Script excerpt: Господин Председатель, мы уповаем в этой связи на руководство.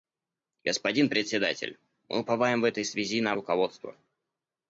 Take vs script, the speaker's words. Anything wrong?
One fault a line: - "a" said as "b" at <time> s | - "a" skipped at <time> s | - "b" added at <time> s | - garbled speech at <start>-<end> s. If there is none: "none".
none